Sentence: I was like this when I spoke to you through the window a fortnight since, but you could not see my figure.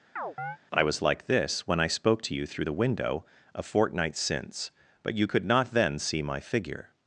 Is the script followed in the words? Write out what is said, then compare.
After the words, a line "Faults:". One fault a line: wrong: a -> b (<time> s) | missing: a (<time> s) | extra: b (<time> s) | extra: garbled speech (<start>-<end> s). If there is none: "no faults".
I was like this when I spoke to you through the window a fortnight since, but you could not then see my figure.
Faults:
extra: then (5.7 s)